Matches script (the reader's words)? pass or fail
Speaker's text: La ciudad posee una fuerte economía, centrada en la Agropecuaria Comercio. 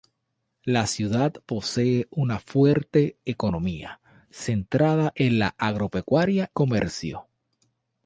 pass